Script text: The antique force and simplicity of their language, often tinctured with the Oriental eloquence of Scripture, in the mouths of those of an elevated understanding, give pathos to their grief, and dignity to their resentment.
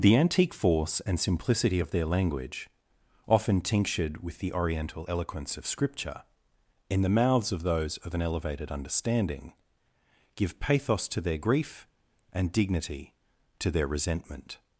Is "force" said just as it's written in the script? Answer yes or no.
yes